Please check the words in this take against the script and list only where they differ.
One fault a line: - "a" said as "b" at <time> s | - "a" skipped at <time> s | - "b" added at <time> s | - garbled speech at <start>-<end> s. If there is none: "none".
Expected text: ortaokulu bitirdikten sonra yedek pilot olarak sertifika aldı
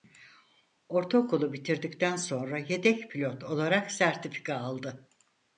none